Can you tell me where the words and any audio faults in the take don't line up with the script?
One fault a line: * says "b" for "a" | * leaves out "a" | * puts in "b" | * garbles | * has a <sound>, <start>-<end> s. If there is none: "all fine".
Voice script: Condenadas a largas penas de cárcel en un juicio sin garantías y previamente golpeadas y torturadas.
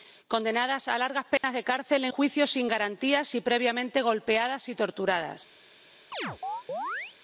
* has a dropout, 1.4-1.4 s
* leaves out "un"
* has a chirp, 6.1-7.2 s